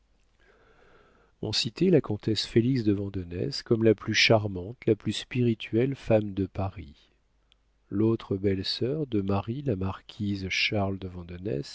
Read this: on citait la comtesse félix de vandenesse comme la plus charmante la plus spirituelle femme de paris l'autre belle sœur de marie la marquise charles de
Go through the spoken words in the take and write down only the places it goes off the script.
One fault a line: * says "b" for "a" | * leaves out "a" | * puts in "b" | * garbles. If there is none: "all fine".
all fine